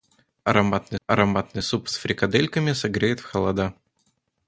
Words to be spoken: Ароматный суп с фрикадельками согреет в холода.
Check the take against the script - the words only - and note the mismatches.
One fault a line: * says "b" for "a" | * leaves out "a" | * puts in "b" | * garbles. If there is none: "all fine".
* puts in "ароматный"